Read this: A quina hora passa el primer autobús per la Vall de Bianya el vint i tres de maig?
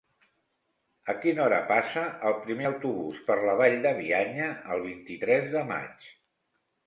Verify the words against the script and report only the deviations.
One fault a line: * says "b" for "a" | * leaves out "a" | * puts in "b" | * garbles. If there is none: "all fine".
all fine